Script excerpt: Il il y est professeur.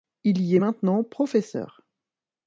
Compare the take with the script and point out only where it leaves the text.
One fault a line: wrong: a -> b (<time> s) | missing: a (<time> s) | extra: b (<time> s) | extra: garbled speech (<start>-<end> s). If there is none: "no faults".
missing: il (0.4 s)
extra: maintenant (0.6 s)